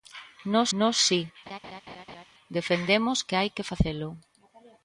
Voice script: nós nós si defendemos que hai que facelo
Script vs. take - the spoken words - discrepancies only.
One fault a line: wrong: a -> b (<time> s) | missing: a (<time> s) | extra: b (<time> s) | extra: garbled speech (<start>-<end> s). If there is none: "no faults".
no faults